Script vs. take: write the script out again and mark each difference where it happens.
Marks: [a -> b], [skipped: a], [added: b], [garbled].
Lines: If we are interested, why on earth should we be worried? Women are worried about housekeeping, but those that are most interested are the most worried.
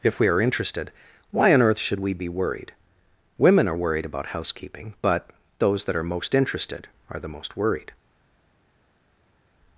If we are interested, why on earth should we be worried? Women are worried about housekeeping, but those that are most interested are the most worried.